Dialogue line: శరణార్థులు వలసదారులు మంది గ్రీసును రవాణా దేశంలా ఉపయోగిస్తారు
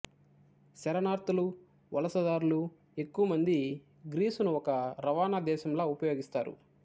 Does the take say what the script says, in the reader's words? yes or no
no